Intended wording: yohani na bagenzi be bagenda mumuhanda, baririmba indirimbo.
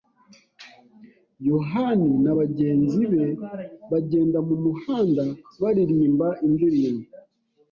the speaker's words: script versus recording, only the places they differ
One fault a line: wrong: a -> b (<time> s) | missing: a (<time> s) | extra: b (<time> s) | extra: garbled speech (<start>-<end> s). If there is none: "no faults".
no faults